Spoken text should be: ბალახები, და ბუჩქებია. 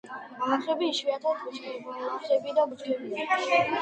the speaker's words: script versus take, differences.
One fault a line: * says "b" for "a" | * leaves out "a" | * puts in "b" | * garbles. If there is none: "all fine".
* puts in "იშვიათად ბუჩქბალახები"